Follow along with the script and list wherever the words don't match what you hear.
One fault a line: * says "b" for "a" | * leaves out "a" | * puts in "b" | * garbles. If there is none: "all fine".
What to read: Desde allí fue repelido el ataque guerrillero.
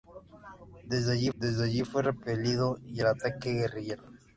* puts in "desde allí"